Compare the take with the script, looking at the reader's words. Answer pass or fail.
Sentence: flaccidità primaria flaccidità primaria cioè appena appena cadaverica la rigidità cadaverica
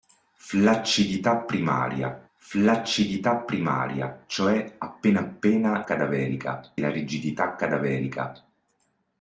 pass